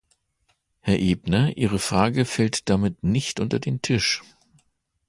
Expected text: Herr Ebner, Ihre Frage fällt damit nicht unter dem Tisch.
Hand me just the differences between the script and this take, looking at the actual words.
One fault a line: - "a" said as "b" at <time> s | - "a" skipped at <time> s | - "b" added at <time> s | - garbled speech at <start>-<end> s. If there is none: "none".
- "dem" said as "den" at 3.6 s